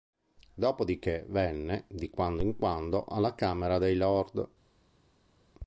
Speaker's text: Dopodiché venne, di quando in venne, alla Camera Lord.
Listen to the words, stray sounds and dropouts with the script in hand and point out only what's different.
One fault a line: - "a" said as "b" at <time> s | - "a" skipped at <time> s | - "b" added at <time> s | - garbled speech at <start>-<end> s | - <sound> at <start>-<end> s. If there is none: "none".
- "venne" said as "quando" at 2.6 s
- "dei" added at 3.8 s